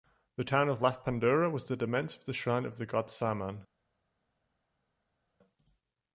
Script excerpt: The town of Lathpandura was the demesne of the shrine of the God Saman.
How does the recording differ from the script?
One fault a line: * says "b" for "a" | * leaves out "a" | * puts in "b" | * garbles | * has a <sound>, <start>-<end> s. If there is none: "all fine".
all fine